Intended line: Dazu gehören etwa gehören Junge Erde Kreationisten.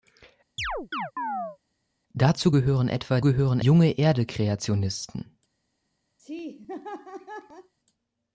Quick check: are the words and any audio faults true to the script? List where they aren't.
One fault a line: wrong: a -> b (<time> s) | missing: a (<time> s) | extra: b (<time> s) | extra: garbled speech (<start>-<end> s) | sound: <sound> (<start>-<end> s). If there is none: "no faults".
sound: chirp (0.6-1.6 s)
sound: laugh (6.2-7.7 s)